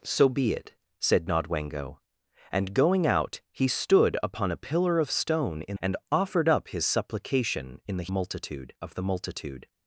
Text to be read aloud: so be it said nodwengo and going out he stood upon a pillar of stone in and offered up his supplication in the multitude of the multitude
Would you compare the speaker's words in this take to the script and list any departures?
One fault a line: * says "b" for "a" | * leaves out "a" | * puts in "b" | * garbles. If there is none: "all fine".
all fine